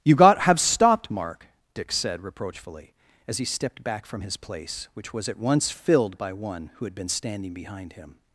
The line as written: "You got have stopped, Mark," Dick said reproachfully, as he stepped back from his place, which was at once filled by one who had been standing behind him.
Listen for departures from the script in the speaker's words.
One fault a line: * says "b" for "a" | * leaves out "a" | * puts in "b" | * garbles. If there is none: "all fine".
all fine